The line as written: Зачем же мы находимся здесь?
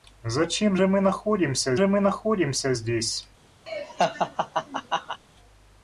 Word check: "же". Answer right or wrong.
right